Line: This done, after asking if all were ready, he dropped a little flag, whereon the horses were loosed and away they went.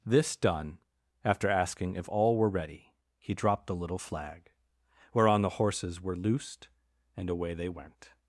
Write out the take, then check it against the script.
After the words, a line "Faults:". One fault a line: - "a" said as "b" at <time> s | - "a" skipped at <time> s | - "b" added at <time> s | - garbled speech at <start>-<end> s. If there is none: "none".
This done, after asking if all were ready, he dropped the little flag, whereon the horses were loosed and away they went.
Faults:
- "a" said as "the" at 3.7 s